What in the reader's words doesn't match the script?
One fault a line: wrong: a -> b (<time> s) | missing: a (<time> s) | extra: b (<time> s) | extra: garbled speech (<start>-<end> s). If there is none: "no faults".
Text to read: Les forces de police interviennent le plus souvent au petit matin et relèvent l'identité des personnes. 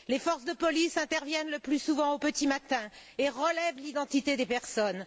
no faults